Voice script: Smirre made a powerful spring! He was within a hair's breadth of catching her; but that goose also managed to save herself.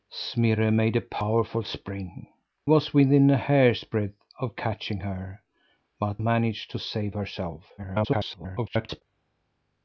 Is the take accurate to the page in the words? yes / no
no